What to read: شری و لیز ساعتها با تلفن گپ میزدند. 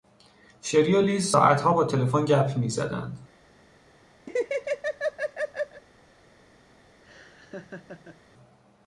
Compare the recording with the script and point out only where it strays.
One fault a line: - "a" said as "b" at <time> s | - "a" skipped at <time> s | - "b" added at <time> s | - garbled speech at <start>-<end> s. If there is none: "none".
none